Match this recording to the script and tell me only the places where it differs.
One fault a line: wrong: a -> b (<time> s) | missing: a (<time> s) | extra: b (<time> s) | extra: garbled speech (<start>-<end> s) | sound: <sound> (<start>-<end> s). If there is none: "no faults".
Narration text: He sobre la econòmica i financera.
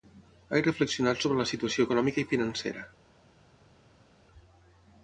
extra: reflexionat (0.7 s)
extra: situació (1.5 s)